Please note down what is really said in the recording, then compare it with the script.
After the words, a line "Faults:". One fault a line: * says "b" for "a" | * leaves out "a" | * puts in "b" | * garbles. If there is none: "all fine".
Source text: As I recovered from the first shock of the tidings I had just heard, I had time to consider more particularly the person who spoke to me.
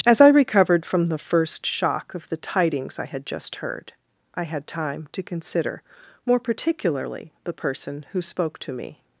As I recovered from the first shock of the tidings I had just heard, I had time to consider more particularly the person who spoke to me.
Faults:
all fine